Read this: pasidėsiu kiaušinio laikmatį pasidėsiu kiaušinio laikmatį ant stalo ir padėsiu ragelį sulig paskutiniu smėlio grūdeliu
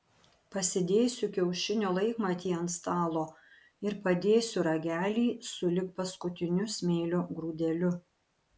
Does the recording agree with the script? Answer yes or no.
no